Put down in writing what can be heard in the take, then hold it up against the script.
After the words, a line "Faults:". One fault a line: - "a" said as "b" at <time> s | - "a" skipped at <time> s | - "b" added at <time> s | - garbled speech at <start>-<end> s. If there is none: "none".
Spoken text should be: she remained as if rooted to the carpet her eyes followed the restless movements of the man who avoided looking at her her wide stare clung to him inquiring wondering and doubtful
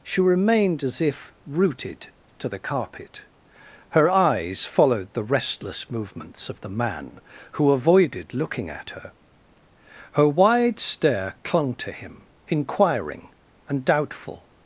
she remained as if rooted to the carpet her eyes followed the restless movements of the man who avoided looking at her her wide stare clung to him inquiring and doubtful
Faults:
- "wondering" skipped at 13.3 s